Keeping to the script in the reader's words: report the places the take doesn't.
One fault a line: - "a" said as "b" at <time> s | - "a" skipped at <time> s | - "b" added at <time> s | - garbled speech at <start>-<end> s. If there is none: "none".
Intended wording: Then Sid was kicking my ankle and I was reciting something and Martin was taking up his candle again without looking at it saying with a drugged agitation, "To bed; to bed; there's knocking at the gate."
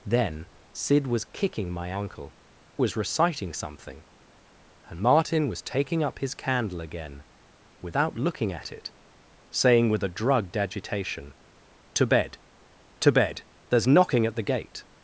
- "and I" skipped at 2.3 s